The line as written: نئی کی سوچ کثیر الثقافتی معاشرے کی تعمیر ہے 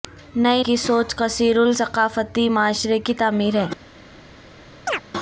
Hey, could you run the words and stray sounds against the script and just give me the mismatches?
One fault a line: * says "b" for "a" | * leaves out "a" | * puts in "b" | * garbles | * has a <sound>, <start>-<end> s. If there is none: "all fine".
* has a chirp, 4.9-5.0 s